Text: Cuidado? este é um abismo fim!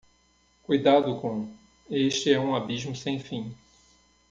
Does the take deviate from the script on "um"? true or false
false